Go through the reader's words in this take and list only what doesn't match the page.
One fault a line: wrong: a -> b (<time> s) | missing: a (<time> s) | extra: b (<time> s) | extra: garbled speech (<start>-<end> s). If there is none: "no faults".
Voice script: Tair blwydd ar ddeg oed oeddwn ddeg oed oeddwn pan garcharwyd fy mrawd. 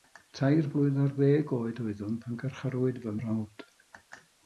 missing: ddeg oed oeddwn (2.2 s)